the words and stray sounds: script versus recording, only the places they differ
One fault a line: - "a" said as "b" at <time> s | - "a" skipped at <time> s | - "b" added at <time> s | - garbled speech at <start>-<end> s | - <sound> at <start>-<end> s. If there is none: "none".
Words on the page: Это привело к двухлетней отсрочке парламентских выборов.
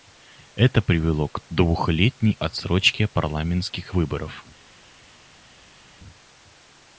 none